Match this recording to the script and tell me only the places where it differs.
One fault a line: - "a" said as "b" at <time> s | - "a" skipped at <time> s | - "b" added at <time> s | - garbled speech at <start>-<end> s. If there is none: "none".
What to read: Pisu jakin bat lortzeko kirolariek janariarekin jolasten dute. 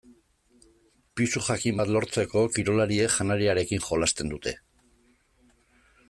none